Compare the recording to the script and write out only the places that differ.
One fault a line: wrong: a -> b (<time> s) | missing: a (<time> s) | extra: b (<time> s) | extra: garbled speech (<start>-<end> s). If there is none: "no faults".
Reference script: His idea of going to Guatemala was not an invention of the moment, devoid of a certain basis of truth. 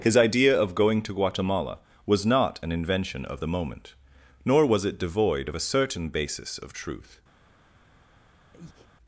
extra: nor was it (4.5 s)